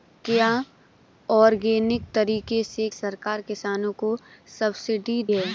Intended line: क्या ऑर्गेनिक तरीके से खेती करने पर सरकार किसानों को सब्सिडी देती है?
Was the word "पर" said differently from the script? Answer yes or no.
yes